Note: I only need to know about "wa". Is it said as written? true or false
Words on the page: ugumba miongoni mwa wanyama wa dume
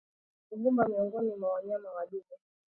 true